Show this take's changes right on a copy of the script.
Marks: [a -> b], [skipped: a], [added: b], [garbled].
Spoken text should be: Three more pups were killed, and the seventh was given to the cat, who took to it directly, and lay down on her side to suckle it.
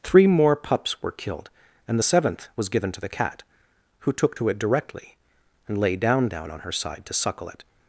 Three more pups were killed, and the seventh was given to the cat, who took to it directly, and lay down [added: down] on her side to suckle it.